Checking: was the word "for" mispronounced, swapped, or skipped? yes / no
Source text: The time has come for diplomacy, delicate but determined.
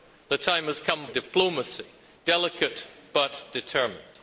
yes